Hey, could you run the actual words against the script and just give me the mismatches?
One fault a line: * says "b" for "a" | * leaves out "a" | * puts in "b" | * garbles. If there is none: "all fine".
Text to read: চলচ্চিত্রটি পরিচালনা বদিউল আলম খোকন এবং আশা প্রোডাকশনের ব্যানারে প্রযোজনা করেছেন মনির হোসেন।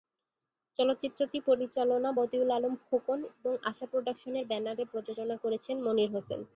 all fine